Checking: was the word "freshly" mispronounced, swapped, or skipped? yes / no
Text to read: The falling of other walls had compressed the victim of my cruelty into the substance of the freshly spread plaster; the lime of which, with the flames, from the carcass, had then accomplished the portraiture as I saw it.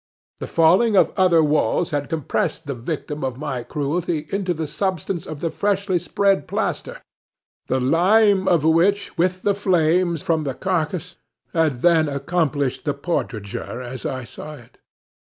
no